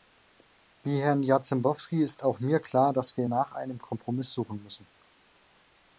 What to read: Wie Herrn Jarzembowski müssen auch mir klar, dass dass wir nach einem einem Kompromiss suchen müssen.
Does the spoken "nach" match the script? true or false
true